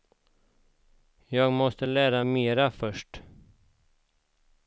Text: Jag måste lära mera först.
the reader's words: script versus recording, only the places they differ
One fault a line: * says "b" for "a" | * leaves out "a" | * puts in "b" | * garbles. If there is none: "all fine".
all fine